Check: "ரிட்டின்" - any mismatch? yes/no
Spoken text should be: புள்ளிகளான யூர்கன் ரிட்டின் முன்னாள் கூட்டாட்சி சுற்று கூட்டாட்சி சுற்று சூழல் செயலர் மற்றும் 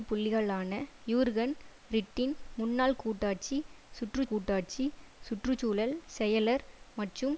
no